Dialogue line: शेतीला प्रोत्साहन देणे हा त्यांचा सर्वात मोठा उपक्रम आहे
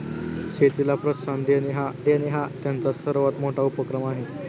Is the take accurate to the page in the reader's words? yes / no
no